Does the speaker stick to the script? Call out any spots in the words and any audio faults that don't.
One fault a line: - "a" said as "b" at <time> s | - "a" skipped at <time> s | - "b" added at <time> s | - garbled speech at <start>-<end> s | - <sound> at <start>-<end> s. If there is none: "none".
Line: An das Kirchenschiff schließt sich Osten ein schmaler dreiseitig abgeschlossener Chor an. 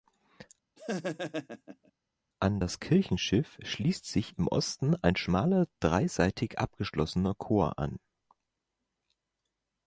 - laugh at 0.8-1.9 s
- "im" added at 4.4 s